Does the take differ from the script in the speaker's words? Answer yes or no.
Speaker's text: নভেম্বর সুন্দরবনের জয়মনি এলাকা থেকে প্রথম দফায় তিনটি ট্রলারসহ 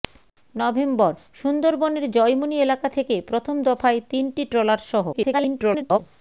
yes